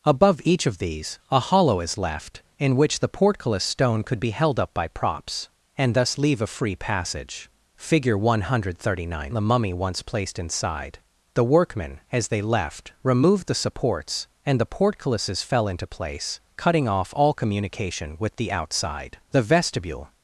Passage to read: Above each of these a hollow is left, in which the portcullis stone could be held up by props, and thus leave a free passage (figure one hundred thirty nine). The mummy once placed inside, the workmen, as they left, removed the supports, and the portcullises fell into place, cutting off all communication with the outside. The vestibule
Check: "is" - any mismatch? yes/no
no